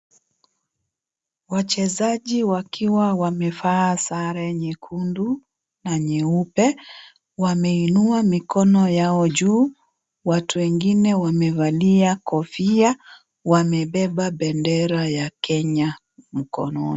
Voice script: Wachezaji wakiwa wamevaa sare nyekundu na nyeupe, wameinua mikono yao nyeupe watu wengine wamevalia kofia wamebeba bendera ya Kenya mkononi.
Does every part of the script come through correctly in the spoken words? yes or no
no